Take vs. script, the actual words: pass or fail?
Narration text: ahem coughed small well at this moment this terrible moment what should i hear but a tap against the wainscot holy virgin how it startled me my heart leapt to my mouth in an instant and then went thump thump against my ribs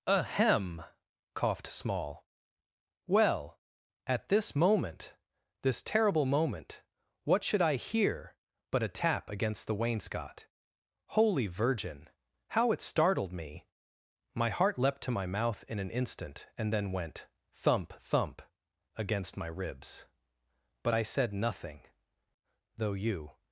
fail